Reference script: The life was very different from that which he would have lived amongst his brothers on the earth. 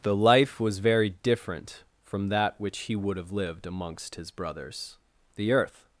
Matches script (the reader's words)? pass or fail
fail